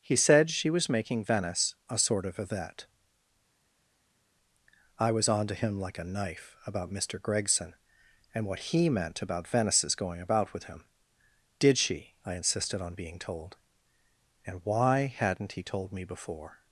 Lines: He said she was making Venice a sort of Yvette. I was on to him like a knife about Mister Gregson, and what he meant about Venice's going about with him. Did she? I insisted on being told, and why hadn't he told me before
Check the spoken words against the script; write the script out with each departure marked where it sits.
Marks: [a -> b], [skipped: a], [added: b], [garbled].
He said she was making Venice a sort of Yvette. I was on to him like a knife about Mister Gregson, and what he meant about Venice's going about with him. Did she? I insisted on being told, and why hadn't he told me before